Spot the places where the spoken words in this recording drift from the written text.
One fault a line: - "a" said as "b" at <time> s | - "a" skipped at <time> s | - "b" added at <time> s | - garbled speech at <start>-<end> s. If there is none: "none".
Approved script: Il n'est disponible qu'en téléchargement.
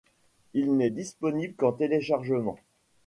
none